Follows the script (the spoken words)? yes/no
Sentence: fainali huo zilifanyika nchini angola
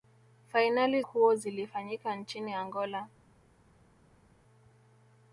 yes